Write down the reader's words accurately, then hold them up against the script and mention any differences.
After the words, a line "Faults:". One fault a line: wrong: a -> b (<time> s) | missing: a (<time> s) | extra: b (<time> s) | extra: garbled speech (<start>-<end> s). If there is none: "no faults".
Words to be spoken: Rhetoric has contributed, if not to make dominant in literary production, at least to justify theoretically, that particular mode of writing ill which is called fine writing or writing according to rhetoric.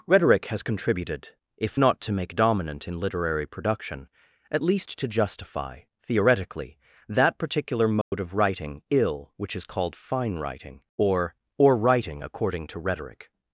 Rhetoric has contributed, if not to make dominant in literary production, at least to justify theoretically, that particular mode of writing ill which is called fine writing or or writing according to rhetoric.
Faults:
extra: or (11.6 s)